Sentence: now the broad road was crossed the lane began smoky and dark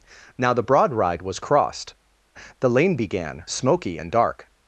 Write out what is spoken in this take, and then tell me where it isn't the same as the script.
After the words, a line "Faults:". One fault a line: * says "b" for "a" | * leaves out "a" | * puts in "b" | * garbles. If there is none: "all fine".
now the broad ride was crossed the lane began smoky and dark
Faults:
* says "ride" for "road"